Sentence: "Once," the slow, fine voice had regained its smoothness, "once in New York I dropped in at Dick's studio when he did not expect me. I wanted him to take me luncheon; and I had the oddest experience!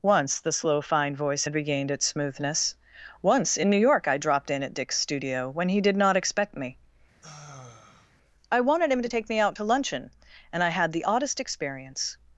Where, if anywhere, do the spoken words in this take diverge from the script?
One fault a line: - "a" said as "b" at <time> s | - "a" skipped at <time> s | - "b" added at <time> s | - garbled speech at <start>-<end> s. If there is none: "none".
- "out to" added at 9.4 s